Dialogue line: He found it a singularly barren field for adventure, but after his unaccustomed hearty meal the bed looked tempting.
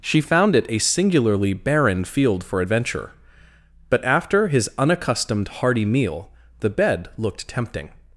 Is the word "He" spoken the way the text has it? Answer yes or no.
no